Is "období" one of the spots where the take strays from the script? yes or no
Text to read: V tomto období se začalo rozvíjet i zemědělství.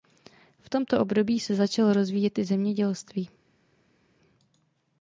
no